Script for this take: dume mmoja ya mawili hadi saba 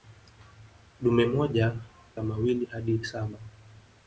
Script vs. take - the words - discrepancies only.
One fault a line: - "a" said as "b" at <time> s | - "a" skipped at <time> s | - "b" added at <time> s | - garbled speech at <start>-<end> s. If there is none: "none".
none